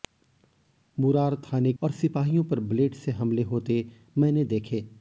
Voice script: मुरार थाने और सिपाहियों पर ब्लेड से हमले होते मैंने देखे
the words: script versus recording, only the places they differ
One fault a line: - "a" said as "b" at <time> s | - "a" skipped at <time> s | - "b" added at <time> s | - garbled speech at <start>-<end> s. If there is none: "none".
none